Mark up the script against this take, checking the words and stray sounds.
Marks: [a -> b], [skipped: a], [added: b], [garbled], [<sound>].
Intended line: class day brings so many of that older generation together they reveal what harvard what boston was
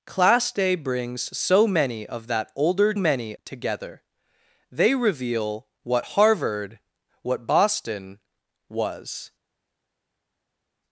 class day brings so many of that older [generation -> many] together they reveal what harvard what boston was